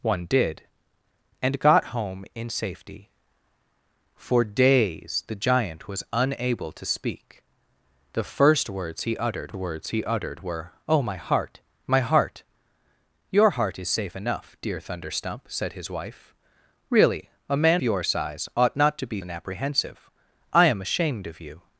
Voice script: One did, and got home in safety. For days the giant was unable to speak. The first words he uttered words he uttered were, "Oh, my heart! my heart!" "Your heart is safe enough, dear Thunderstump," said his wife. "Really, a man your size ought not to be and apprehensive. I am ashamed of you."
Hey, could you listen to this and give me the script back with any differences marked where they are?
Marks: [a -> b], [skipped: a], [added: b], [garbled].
One did, and got home in safety. For days the giant was unable to speak. The first words he uttered words he uttered were, "Oh, my heart! my heart!" "Your heart is safe enough, dear Thunderstump," said his wife. "Really, a man your size ought not to be and apprehensive. I am ashamed of you."